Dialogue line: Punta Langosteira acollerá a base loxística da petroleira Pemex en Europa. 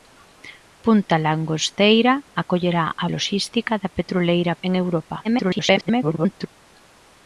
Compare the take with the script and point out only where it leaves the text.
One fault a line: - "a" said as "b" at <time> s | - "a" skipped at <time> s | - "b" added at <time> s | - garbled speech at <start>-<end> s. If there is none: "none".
- "base" skipped at 3.0 s
- "Pemex" skipped at 4.5 s
- garbled speech at 5.2-6.5 s